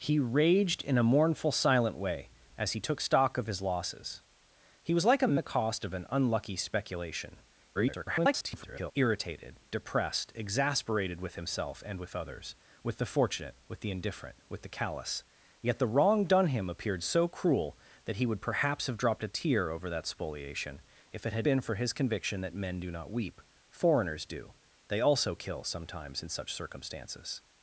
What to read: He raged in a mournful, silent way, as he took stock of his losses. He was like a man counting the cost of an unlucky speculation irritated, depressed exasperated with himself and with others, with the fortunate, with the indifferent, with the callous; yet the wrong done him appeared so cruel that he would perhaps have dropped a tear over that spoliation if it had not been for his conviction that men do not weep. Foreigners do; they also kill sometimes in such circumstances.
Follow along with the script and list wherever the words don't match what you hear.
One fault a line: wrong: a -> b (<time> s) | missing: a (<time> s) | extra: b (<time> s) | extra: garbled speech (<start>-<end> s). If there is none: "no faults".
missing: man counting (5.4 s)
extra: garbled speech (7.7-8.9 s)
missing: not (21.5 s)